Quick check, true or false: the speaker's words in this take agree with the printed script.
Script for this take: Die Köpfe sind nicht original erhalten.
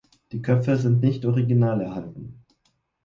true